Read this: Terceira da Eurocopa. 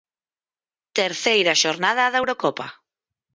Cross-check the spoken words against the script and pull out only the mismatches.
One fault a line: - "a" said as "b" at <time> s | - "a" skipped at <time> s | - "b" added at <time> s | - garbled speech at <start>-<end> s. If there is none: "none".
- "xornada" added at 1.6 s